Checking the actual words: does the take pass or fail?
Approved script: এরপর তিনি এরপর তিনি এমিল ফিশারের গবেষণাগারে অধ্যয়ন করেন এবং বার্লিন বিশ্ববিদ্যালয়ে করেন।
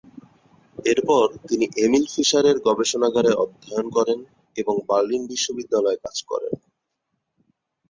fail